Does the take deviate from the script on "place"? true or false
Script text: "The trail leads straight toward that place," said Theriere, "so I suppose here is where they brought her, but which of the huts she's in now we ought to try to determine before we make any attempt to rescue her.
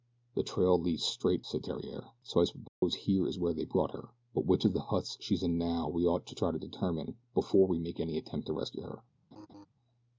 true